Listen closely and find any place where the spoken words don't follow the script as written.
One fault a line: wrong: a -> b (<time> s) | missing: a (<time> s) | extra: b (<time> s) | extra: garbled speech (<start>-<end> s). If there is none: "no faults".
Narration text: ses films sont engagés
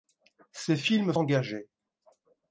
missing: sont (1.1 s)